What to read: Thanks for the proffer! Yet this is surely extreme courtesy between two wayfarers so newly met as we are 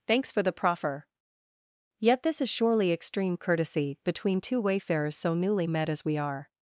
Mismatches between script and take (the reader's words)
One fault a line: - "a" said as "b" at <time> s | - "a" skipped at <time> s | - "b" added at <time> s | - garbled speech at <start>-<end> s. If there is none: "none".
none